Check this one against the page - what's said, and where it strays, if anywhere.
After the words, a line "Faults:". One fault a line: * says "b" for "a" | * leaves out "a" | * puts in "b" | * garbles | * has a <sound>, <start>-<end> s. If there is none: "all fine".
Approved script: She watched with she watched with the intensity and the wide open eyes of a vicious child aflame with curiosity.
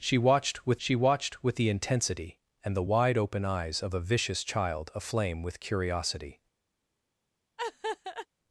She watched with she watched with the intensity and the wide open eyes of a vicious child aflame with curiosity.
Faults:
* has a laugh, 7.6-8.3 s